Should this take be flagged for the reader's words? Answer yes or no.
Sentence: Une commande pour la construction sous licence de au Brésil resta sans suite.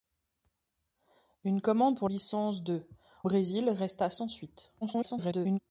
yes